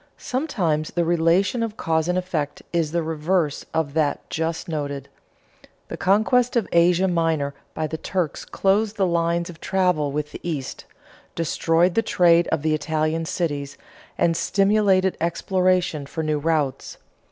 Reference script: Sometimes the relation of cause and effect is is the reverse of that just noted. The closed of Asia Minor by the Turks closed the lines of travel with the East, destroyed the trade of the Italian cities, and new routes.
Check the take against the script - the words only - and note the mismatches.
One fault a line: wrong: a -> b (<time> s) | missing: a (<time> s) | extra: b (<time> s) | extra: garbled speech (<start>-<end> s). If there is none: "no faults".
missing: is (2.9 s)
wrong: closed -> conquest (6.0 s)
extra: stimulated exploration for (14.3 s)